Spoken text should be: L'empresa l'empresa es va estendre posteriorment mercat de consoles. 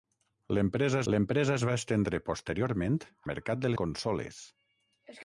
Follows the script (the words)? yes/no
yes